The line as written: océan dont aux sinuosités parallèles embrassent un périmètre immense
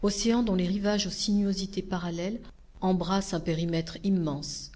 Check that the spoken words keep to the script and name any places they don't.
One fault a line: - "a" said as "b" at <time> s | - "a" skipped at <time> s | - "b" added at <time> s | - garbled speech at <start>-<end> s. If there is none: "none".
- "les rivages" added at 0.6 s